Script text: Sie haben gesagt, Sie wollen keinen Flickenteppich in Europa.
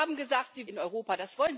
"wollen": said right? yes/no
no